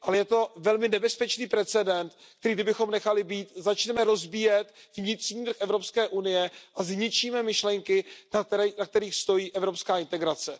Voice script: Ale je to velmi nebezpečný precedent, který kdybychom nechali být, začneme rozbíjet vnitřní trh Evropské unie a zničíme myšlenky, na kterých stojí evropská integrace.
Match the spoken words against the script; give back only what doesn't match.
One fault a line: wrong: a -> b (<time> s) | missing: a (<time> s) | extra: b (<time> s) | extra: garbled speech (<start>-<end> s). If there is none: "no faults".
no faults